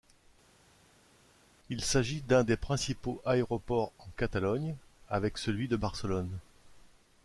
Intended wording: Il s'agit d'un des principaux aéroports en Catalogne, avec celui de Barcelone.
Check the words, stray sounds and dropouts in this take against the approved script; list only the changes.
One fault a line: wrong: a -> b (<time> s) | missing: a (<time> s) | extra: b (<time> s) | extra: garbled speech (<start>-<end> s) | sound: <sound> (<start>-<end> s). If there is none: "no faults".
no faults